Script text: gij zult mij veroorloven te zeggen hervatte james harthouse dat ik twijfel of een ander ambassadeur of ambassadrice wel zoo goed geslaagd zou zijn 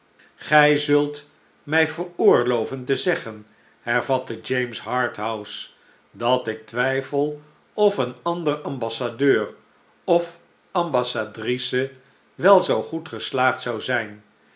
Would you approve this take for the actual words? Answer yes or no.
yes